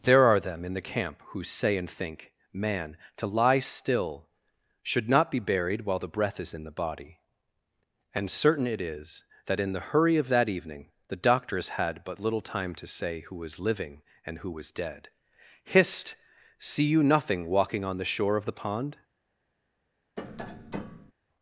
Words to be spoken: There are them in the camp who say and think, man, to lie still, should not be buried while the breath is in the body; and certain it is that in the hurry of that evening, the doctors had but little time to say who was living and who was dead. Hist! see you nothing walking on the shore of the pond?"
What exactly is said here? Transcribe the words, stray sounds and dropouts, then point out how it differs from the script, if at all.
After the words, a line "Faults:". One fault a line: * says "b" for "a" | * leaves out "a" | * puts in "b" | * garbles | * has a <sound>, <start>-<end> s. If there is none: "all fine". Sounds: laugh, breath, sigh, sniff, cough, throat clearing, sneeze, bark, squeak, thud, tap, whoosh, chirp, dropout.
There are them in the camp who say and think, man, to lie still, should not be buried while the breath is in the body; and certain it is that in the hurry of that evening, the doctors had but little time to say who was living and who was dead. Hist! see you nothing walking on the shore of the pond?"
Faults:
* has a tap, 20.2-21.1 s